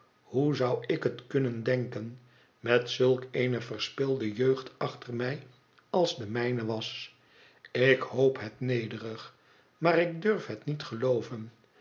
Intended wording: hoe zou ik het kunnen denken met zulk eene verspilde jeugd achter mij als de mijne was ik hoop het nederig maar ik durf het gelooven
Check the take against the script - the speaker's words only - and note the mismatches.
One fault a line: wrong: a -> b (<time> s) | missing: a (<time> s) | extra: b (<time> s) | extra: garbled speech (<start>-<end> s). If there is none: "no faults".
extra: niet (10.6 s)